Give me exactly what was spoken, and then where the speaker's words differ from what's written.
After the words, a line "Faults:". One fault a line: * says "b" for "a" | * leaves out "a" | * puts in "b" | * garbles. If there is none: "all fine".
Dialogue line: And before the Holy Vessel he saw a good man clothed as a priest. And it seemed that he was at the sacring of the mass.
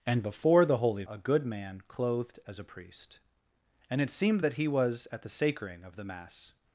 And before the Holy A good man clothed as a priest. And it seemed that he was at the sacring of the mass.
Faults:
* leaves out "Vessel he saw"